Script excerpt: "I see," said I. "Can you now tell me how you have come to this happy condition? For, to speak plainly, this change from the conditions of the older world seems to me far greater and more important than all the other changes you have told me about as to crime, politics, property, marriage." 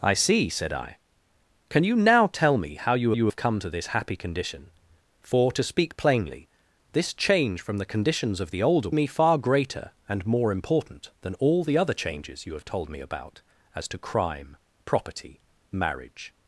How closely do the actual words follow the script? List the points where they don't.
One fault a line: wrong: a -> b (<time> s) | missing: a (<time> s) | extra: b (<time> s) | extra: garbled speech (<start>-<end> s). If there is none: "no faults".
extra: you (3.1 s)
missing: world seems to (8.9 s)
missing: politics (14.6 s)